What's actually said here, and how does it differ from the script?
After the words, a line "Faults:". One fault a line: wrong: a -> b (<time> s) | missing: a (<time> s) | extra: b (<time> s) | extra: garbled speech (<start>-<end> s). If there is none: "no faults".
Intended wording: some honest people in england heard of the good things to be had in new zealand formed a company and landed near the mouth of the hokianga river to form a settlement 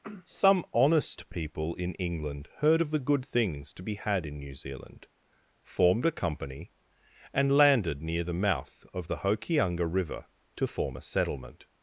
some honest people in england heard of the good things to be had in new zealand formed a company and landed near the mouth of the hokianga river to form a settlement
Faults:
no faults